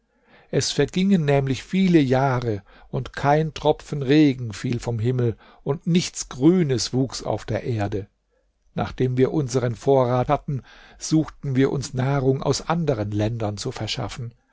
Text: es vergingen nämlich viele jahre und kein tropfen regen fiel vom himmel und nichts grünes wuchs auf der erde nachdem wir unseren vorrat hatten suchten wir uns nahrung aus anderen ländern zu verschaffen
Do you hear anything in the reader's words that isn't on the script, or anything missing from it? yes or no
no